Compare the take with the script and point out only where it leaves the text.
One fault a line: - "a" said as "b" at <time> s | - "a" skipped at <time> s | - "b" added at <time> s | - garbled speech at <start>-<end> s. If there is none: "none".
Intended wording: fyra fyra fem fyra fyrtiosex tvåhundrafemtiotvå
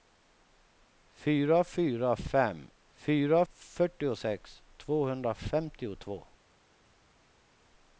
none